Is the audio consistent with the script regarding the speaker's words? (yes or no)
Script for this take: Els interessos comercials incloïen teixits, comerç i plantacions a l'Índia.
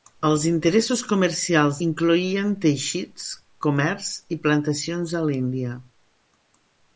yes